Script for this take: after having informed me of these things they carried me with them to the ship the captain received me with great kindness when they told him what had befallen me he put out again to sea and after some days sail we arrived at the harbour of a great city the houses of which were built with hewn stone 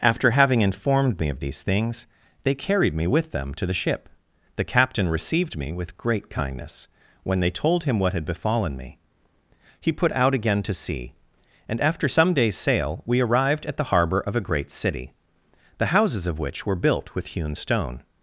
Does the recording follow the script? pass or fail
pass